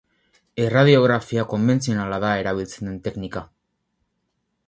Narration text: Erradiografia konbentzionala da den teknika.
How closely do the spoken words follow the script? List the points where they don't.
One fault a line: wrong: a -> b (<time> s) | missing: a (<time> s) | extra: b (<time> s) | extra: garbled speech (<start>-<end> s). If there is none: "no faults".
extra: erabiltzen (2.4 s)